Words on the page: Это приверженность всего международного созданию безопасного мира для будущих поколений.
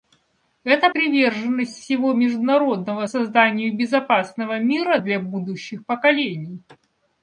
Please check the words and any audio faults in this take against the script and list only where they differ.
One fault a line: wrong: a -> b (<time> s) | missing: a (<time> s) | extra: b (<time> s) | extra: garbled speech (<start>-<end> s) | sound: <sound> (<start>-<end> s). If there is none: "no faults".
no faults